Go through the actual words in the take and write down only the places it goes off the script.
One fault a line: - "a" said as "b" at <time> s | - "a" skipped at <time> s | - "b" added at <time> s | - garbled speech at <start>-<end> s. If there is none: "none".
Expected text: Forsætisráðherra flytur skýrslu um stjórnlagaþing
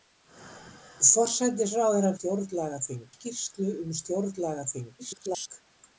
- "flytur" said as "stjórnlagaþing" at 2.2 s
- garbled speech at 5.0-5.5 s